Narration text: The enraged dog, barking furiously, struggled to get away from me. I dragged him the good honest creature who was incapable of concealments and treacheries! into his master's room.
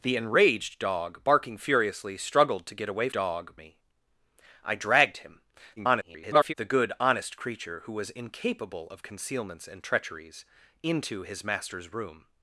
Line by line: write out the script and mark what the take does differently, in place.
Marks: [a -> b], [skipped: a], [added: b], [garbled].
The enraged dog, barking furiously, struggled to get away [from -> dog] me. I dragged him [garbled] the good honest creature who was incapable of concealments and treacheries! into his master's room.